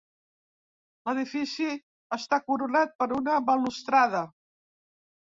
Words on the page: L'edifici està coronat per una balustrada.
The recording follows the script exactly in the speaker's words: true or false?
true